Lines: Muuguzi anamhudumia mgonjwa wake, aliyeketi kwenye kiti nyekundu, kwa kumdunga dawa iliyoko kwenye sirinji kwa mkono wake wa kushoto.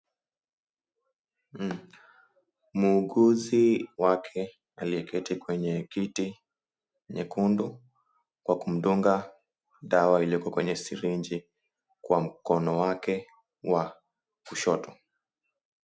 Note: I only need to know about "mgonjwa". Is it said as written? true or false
false